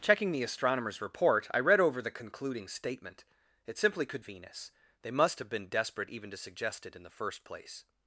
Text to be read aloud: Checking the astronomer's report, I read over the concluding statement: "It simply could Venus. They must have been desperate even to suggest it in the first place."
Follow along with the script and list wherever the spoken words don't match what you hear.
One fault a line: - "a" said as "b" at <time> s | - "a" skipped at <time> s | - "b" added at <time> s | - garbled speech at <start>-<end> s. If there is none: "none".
none